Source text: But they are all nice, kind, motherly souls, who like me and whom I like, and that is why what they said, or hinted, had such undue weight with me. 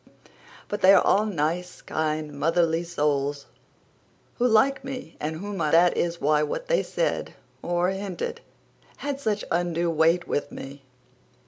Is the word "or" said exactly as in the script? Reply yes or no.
yes